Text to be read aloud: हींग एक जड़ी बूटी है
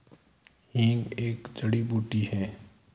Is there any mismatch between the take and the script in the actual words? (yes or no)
no